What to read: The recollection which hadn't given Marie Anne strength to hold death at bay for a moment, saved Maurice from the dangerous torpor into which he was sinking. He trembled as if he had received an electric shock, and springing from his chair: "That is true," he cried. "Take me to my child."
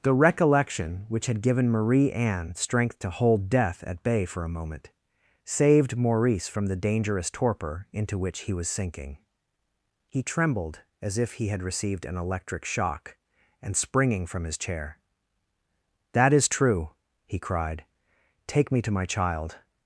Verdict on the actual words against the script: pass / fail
fail